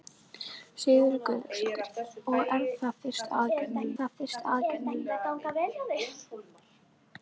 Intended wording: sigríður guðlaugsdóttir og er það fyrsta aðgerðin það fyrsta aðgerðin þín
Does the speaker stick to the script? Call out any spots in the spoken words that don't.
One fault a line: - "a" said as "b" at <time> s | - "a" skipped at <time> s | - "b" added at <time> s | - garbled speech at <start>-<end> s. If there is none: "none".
none